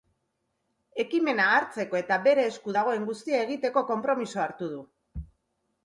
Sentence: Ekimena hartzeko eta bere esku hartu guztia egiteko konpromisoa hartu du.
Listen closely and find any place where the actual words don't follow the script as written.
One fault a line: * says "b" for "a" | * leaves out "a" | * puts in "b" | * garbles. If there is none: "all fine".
* says "dagoen" for "hartu"